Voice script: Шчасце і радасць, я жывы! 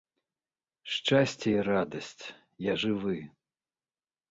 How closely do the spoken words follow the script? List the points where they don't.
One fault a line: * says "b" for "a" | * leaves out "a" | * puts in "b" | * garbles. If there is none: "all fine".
all fine